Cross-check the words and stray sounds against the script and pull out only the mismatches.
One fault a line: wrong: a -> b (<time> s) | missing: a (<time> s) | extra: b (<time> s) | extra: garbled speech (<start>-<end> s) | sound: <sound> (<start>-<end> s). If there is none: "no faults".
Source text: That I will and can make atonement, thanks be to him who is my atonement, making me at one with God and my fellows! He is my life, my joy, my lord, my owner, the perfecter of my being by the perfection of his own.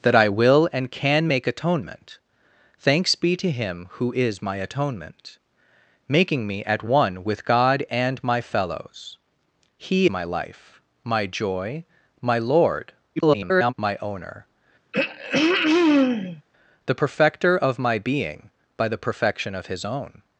missing: is (10.1 s)
extra: garbled speech (13.2-13.7 s)
sound: throat clearing (14.9-16.4 s)